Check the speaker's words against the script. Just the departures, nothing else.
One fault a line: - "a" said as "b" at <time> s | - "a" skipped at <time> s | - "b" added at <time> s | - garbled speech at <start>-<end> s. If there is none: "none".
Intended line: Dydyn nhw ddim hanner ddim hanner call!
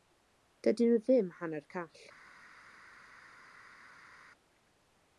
- "ddim hanner" skipped at 1.7 s